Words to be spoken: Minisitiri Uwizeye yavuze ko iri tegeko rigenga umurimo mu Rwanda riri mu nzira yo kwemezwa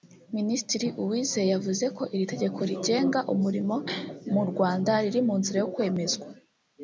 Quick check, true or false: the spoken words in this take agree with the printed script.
true